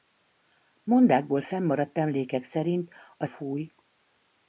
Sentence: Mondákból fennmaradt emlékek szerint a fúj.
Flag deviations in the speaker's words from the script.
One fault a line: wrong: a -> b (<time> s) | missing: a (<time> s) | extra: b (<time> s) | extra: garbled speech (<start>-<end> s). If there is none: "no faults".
no faults